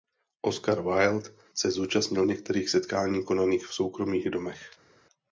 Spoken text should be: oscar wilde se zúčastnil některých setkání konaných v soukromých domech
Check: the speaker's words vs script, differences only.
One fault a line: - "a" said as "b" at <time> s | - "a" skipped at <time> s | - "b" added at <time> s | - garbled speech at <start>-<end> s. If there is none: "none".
none